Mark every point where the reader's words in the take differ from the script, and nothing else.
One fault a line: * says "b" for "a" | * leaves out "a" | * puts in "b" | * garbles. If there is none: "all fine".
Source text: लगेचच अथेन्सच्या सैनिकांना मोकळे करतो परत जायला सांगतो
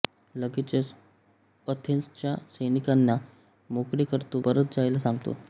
all fine